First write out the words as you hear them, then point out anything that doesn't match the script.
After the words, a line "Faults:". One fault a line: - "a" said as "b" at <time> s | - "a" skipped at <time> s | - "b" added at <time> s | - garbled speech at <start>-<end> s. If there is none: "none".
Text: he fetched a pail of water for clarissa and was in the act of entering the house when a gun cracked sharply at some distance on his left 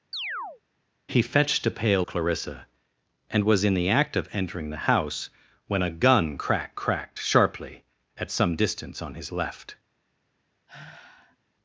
he fetched a pail clarissa and was in the act of entering the house when a gun cracked cracked sharply at some distance on his left
Faults:
- "of water for" skipped at 2.1 s
- "cracked" added at 6.8 s